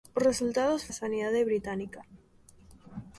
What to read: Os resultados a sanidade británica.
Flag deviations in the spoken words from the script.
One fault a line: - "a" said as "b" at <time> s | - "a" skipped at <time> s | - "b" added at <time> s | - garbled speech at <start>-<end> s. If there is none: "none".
none